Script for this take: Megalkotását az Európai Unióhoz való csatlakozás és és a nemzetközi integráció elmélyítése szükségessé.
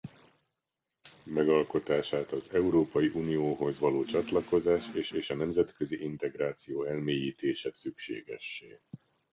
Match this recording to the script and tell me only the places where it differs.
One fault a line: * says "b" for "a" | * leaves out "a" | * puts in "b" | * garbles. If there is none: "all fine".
all fine